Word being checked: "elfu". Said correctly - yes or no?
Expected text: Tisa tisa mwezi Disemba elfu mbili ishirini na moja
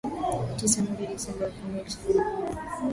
yes